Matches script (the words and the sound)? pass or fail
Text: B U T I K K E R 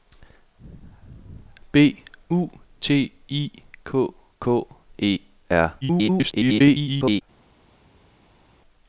fail